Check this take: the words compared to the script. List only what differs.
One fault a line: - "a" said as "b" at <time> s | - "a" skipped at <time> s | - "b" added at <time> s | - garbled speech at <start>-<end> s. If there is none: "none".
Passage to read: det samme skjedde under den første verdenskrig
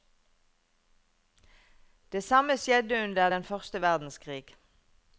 none